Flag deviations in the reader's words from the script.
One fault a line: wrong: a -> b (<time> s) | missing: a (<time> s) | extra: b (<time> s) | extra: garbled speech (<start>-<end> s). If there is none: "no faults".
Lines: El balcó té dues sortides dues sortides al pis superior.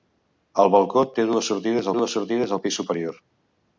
no faults